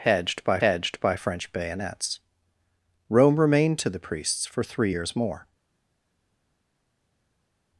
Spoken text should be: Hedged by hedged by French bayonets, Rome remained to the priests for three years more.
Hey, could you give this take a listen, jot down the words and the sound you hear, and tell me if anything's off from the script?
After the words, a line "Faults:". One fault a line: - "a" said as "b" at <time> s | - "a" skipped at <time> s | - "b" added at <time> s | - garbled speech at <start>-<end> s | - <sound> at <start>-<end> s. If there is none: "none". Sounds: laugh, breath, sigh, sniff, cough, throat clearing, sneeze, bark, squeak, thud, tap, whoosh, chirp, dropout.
Hedged by hedged by French bayonets, Rome remained to the priests for three years more.
Faults:
none